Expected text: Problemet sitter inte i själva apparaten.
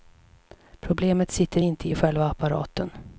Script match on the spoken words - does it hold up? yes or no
yes